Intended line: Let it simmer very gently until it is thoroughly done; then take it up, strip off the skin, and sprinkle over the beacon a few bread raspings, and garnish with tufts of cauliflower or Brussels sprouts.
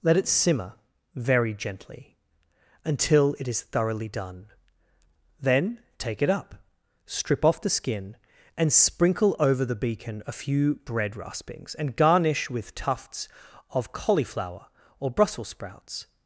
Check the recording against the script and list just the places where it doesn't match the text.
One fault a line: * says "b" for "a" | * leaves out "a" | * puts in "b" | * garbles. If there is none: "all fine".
all fine